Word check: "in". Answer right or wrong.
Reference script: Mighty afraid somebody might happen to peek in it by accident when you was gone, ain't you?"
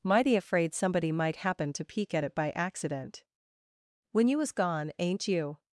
wrong